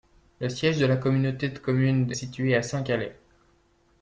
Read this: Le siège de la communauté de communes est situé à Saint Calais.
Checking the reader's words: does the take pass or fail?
fail